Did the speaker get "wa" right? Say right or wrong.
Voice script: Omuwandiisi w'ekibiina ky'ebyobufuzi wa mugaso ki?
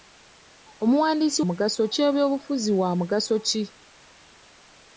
right